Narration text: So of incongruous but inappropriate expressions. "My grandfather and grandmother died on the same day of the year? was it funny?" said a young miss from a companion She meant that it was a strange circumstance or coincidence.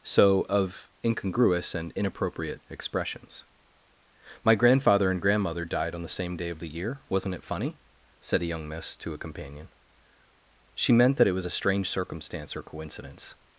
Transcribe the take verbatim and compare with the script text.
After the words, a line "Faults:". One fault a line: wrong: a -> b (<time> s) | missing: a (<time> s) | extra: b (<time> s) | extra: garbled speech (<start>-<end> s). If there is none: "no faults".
So of incongruous and inappropriate expressions. "My grandfather and grandmother died on the same day of the year? wasn't it funny?" said a young miss to a companion She meant that it was a strange circumstance or coincidence.
Faults:
wrong: but -> and (1.8 s)
wrong: was -> wasn't (7.1 s)
wrong: from -> to (9.0 s)